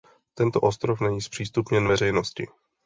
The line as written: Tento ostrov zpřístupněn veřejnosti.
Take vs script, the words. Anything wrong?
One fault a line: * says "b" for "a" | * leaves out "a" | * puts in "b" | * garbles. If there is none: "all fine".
* puts in "není"